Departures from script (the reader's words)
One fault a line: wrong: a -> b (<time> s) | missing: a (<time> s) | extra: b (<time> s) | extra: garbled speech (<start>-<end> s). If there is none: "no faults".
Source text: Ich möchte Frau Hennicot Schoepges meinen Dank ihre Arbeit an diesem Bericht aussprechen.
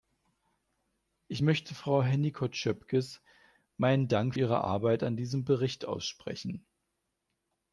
no faults